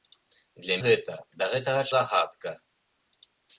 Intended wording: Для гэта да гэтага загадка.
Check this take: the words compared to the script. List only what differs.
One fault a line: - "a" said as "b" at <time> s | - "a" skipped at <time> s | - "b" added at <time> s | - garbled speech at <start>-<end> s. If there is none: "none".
none